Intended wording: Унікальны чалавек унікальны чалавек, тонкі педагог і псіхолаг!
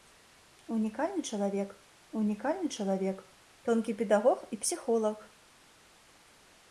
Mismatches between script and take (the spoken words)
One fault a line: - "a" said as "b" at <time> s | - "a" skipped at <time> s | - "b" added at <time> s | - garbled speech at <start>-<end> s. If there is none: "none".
none